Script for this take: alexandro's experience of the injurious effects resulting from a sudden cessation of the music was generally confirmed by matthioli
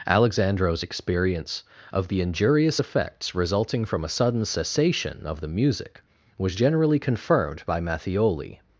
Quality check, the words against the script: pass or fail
pass